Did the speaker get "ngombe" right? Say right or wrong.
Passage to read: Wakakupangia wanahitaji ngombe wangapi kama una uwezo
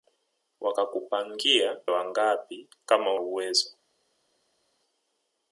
wrong